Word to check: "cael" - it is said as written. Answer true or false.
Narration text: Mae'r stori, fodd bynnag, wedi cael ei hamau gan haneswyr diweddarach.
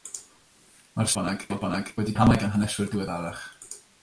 false